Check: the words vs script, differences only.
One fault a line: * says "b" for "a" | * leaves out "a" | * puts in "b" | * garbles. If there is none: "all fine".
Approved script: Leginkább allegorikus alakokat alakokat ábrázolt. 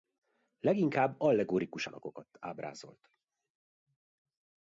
* leaves out "alakokat"